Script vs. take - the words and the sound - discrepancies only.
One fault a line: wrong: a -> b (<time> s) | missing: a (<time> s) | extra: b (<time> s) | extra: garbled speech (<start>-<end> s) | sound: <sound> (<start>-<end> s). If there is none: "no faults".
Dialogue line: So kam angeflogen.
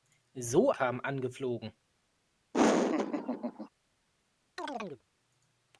sound: laugh (2.5-3.7 s)
sound: chirp (4.6-5.0 s)